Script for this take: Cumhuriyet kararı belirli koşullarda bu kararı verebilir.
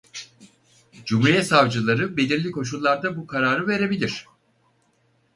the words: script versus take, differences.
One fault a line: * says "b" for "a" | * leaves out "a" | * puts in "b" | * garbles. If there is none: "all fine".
* says "savcıları" for "kararı"